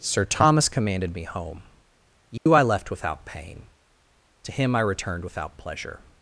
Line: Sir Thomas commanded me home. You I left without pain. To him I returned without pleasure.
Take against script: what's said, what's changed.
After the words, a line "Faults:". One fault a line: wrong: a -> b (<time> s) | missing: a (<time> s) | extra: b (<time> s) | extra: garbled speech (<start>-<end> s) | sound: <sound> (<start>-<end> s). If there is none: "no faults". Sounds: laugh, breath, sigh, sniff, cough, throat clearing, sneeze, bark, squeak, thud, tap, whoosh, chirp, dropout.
Sir Thomas commanded me home. You I left without pain. To him I returned without pleasure.
Faults:
sound: dropout (2.4-2.5 s)